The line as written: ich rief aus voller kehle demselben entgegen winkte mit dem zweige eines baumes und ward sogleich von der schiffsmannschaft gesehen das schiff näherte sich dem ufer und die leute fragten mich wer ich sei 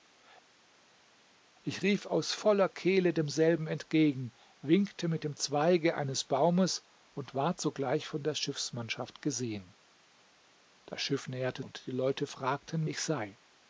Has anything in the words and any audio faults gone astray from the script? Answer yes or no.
yes